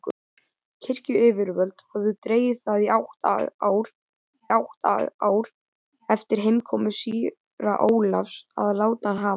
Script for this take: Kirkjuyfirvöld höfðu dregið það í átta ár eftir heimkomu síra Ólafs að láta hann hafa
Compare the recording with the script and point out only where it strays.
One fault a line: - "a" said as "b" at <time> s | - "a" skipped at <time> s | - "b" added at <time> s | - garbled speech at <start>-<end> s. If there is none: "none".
- "átta ár" added at 4.6 s